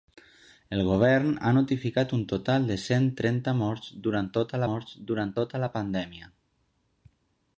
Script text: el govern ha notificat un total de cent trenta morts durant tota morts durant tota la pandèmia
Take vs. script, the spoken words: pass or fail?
pass